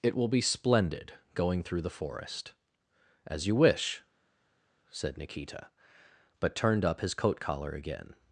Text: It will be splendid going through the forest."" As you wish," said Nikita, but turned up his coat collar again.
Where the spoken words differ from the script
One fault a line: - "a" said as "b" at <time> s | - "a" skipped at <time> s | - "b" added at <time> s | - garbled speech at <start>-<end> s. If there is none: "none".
none